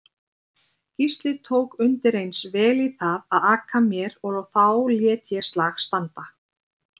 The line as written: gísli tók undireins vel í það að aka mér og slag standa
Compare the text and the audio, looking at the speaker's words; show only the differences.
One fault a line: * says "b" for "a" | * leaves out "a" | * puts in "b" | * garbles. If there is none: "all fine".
* puts in "þá lét ég"